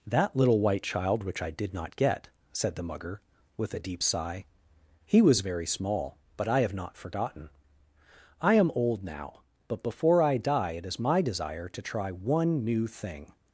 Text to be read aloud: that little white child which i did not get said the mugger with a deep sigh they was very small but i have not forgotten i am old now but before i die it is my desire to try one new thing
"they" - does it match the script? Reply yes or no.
no